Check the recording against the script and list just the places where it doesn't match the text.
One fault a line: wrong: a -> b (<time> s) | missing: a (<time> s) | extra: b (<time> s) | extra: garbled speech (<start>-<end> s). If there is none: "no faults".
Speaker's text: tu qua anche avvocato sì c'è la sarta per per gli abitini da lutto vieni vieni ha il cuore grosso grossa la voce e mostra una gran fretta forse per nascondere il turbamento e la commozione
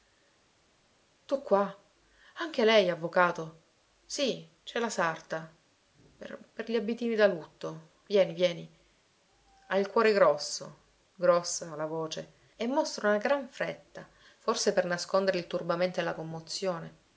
extra: lei (2.6 s)